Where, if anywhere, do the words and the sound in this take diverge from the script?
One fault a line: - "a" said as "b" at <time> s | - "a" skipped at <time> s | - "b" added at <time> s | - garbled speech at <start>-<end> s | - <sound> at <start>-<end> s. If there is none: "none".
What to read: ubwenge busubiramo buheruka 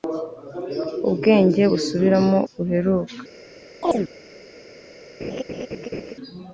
- chirp at 3.8-4.1 s
- laugh at 5.2-6.1 s